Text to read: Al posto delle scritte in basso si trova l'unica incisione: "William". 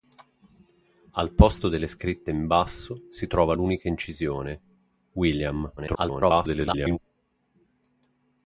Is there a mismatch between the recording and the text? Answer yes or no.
yes